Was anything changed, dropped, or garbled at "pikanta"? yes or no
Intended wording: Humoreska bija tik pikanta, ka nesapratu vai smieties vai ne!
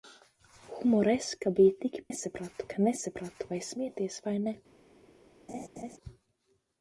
yes